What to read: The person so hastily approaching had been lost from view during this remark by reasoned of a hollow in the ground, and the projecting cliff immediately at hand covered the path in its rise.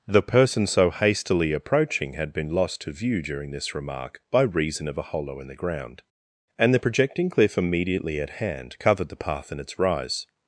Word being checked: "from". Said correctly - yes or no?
no